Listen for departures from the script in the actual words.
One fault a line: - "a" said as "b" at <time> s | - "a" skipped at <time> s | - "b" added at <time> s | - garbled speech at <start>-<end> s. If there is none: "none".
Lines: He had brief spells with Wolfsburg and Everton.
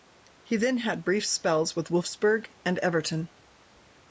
- "then" added at 0.6 s